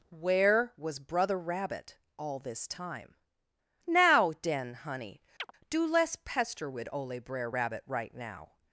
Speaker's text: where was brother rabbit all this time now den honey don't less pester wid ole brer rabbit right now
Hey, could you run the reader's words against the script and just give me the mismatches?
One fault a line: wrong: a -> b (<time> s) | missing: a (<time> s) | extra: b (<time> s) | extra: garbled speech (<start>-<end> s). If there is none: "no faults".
wrong: don't -> do (5.7 s)